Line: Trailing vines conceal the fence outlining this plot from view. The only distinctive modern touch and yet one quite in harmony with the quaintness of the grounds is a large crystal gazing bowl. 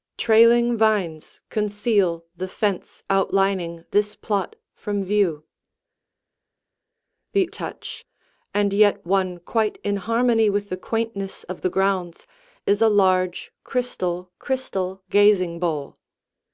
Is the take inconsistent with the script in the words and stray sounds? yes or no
yes